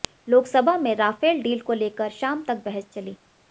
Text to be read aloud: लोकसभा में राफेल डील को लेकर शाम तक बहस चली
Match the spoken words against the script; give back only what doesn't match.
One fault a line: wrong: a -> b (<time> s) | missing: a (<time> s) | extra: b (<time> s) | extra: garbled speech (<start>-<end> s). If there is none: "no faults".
no faults